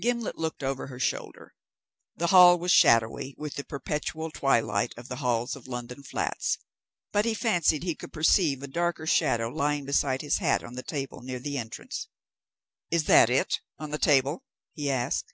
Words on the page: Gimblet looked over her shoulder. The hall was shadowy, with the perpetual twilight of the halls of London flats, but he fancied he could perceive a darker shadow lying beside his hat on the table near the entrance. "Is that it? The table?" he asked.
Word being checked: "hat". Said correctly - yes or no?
yes